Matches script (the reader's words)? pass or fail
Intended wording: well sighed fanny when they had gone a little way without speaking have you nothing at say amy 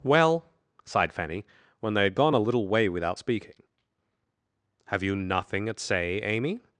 pass